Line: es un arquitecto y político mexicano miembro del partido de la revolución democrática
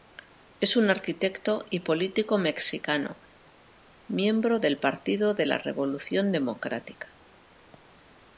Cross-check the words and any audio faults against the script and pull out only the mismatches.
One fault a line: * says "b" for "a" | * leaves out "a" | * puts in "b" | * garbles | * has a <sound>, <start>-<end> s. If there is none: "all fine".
all fine